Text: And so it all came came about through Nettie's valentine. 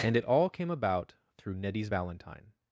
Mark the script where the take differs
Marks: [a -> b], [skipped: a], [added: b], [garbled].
And [skipped: so] it all came [skipped: came] about through Nettie's valentine.